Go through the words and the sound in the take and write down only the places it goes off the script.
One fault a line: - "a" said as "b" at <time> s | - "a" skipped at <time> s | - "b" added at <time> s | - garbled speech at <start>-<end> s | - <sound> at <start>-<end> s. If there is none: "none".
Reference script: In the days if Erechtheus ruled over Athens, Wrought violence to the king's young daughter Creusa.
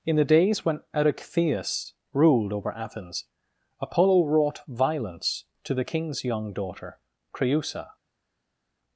- "if" said as "when" at 0.7 s
- "Apollo" added at 3.8 s